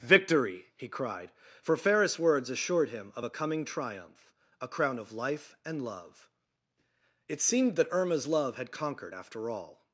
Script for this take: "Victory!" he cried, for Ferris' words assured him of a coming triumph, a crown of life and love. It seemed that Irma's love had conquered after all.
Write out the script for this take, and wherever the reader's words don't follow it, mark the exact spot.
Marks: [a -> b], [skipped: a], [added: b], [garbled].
"Victory!" he cried, for Ferris' words assured him of a coming triumph, a crown of life and love. It seemed that Irma's love had conquered after all.